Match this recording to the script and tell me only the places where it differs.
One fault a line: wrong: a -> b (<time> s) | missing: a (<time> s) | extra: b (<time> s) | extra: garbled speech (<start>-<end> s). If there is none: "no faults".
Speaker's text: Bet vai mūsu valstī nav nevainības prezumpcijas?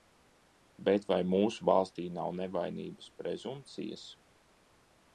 no faults